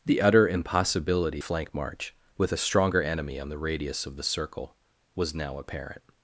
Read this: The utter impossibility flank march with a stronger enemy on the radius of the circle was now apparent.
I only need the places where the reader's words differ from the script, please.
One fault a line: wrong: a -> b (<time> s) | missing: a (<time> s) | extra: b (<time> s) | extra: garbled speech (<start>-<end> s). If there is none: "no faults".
no faults